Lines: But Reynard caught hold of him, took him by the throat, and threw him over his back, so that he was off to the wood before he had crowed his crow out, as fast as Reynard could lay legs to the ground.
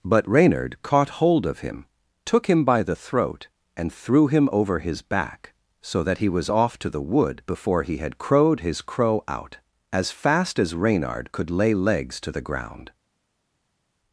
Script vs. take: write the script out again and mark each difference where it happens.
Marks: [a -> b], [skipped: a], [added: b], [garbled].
But Reynard caught hold of him, took him by the throat, and threw him over his back, so that he was off to the wood before he had crowed his crow out, as fast as Reynard could lay legs to the ground.